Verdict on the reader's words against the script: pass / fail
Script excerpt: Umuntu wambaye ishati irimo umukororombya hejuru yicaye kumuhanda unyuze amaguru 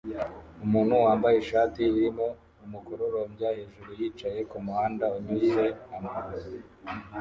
pass